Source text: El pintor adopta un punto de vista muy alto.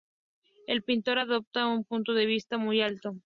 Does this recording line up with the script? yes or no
yes